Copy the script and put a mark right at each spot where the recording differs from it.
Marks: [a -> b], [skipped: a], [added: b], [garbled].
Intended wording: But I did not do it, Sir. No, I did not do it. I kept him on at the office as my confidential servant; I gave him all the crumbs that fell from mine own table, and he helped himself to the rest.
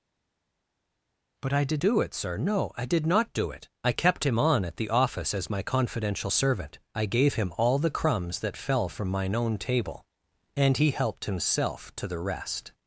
But I did [skipped: not] do it, Sir. No, I did not do it. I kept him on at the office as my confidential servant; I gave him all the crumbs that fell from mine own table, and he helped himself to the rest.